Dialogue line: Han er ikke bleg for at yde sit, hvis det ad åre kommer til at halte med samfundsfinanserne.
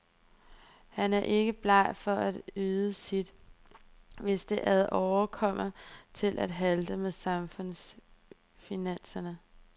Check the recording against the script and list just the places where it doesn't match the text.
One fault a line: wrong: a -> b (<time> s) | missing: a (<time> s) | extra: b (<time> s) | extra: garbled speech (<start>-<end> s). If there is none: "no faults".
no faults